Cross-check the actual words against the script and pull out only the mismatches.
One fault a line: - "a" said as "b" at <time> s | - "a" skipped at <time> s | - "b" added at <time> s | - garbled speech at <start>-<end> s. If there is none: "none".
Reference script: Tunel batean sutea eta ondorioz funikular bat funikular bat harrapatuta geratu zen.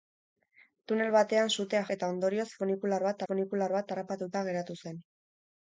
none